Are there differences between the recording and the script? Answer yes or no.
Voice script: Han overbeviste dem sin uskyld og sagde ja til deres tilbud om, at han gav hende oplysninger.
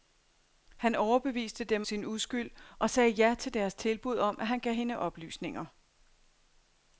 no